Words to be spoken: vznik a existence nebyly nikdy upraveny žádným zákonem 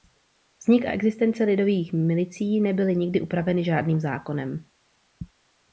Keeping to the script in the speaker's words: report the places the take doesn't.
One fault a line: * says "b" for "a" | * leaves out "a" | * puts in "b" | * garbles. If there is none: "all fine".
* puts in "lidových milicí"